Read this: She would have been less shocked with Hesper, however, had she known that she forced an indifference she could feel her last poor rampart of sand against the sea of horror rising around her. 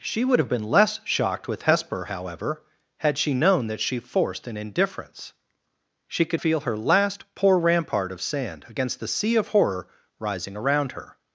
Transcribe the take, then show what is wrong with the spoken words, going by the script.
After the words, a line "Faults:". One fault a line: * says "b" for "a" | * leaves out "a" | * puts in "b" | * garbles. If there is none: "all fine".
She would have been less shocked with Hesper, however, had she known that she forced an indifference she could feel her last poor rampart of sand against the sea of horror rising around her.
Faults:
all fine